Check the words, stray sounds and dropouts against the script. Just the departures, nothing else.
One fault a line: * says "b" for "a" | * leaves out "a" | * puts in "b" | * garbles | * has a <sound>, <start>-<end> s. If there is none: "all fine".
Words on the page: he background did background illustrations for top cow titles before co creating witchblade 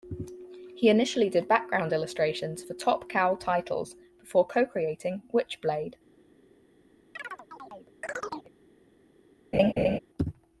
* says "initially" for "background"
* has a chirp, 7.2-8.5 s
* has a laugh, 9.5-10.0 s